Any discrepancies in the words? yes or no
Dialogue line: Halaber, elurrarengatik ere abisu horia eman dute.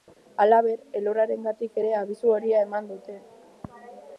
no